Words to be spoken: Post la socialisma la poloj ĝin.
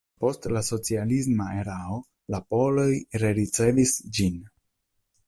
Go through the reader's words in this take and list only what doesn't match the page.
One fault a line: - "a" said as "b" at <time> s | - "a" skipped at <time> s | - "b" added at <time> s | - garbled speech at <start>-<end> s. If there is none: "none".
- "erao" added at 1.6 s
- "rericevis" added at 3.2 s